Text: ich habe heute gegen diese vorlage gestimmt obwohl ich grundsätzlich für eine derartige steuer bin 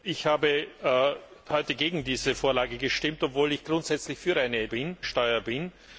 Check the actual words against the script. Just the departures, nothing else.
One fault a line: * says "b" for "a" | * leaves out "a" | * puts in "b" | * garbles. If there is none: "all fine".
* says "bin" for "derartige"